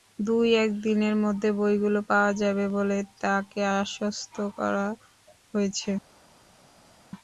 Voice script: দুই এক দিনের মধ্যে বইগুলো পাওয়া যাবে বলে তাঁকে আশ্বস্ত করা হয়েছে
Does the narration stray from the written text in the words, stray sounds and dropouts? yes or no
no